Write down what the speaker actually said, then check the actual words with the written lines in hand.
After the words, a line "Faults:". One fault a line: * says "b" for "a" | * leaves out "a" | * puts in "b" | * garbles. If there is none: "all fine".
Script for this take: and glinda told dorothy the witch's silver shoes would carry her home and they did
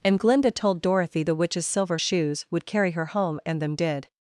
and glinda told dorothy the witch's silver shoes would carry her home and them did
Faults:
* says "them" for "they"